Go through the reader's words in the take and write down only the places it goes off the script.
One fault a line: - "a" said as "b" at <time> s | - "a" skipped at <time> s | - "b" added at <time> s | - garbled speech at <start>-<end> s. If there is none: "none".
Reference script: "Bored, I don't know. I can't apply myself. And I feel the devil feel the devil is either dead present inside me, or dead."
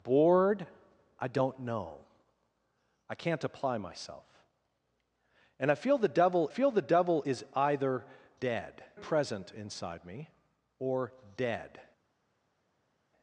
none